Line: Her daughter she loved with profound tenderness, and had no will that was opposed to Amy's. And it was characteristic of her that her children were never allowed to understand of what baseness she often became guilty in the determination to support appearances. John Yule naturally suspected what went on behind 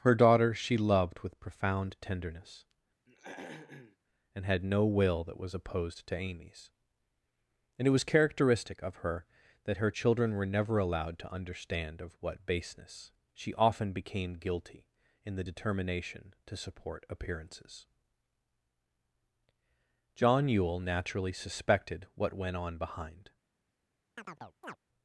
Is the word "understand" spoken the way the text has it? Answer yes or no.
yes